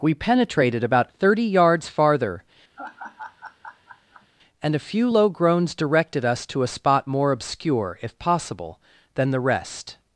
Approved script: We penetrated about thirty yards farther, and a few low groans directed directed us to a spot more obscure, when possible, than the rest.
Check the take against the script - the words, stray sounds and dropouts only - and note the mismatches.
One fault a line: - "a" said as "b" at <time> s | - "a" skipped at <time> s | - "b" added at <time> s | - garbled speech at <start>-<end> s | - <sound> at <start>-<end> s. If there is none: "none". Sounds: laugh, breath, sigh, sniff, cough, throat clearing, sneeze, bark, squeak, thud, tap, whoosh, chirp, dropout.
- laugh at 2.8-4.3 s
- "directed" skipped at 6.2 s
- "when" said as "if" at 8.0 s